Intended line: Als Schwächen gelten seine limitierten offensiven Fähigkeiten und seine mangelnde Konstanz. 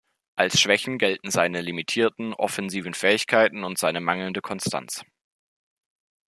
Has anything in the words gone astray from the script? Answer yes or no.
no